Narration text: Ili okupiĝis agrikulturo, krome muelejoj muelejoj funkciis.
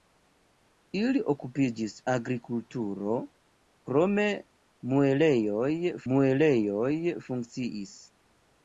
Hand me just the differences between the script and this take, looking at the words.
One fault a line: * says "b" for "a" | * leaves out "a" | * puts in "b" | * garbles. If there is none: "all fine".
all fine